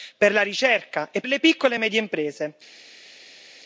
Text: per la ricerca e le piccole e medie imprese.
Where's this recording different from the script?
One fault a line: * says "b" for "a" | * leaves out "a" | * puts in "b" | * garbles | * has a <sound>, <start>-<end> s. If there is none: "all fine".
all fine